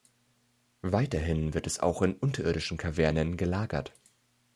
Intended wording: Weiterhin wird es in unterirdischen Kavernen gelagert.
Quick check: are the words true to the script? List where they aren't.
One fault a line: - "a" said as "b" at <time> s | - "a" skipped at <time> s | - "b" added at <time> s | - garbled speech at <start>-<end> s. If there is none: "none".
- "auch" added at 1.8 s